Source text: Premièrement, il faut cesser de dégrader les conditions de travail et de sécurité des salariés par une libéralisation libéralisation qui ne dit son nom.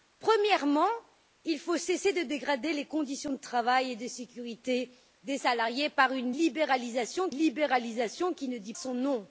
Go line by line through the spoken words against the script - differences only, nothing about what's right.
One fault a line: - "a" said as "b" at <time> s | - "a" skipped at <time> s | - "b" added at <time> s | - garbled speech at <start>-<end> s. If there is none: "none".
none